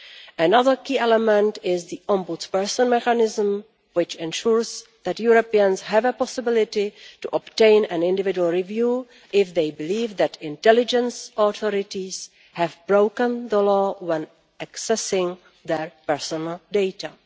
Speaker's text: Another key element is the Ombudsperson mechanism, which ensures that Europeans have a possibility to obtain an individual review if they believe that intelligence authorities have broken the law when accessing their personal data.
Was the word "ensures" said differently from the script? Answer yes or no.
no